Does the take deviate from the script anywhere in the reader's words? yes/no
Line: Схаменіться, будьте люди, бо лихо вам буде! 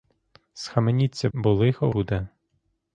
yes